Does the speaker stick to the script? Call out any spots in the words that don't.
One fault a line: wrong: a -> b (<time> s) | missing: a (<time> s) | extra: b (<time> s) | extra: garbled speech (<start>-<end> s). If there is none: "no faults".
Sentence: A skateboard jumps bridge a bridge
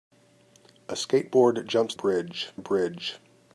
no faults